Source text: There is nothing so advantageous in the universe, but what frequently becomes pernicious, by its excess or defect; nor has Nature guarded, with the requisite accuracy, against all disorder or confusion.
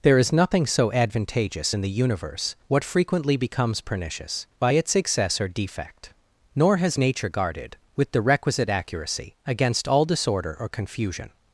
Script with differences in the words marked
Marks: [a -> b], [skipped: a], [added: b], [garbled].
There is nothing so advantageous in the universe, [skipped: but] what frequently becomes pernicious, by its excess or defect; nor has Nature guarded, with the requisite accuracy, against all disorder or confusion.